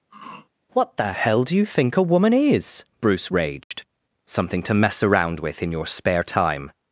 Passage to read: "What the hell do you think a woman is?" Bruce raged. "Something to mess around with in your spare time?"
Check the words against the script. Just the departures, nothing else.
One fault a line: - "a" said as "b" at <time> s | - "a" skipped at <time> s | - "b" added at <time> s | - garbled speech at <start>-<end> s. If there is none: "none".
none